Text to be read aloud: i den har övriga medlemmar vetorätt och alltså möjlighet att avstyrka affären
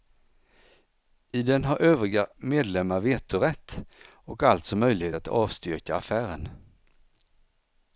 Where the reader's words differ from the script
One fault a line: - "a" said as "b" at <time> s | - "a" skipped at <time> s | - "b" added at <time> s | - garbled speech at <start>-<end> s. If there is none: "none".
none